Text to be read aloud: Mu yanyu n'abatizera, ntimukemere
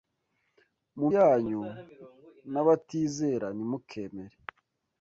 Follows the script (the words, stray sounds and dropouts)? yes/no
yes